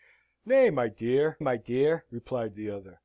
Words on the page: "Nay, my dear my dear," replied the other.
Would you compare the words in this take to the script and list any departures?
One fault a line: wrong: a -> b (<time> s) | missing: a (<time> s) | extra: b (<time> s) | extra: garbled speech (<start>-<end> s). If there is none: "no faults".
no faults